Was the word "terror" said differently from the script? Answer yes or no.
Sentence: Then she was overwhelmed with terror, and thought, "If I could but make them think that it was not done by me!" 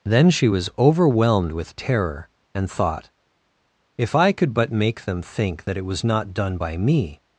no